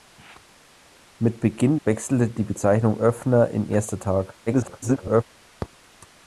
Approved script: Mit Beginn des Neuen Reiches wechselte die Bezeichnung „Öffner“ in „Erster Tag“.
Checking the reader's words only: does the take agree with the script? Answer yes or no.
no